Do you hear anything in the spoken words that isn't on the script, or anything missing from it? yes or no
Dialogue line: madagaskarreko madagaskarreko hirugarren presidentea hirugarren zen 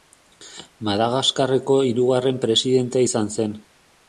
yes